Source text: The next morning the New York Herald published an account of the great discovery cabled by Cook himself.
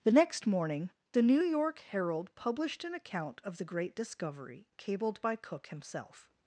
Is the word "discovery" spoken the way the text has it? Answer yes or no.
yes